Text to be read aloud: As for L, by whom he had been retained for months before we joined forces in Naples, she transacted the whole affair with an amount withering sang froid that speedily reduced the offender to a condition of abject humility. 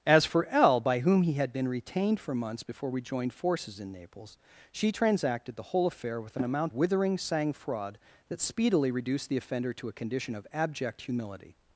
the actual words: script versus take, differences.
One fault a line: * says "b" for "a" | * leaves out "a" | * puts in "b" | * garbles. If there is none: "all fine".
all fine